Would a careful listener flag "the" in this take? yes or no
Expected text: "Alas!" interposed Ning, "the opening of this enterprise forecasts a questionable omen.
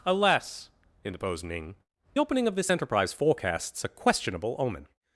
yes